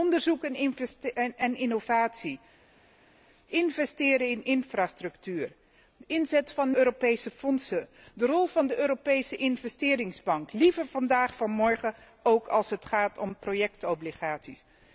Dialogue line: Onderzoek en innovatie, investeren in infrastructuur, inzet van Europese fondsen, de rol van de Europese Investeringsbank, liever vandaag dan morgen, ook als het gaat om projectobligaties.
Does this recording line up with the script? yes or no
yes